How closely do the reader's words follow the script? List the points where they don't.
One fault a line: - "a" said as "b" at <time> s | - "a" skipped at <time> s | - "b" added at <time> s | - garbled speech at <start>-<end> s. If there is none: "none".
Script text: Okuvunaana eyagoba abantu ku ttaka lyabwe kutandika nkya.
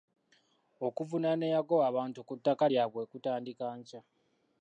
none